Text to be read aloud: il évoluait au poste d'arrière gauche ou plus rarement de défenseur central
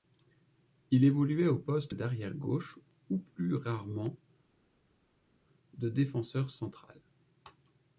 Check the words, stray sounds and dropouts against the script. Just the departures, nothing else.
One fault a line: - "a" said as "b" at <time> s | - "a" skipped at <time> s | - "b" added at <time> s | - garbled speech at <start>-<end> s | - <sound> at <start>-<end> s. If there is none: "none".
none